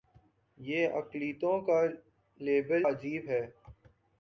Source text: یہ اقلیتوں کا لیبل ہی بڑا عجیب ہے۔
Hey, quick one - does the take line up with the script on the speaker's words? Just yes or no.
no